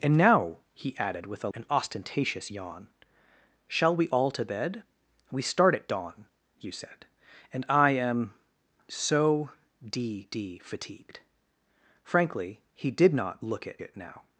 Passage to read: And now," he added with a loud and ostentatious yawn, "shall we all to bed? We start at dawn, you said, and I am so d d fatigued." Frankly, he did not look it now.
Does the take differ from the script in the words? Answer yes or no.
yes